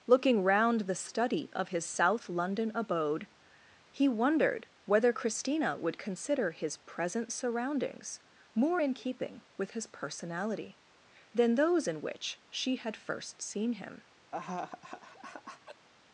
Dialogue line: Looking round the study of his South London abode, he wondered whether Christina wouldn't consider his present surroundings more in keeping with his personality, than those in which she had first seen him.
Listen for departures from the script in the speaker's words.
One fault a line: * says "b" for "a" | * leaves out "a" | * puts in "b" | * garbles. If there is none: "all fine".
* says "would" for "wouldn't"